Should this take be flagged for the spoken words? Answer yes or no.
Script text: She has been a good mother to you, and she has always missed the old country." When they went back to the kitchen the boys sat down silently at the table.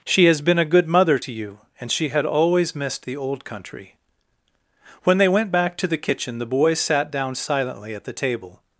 yes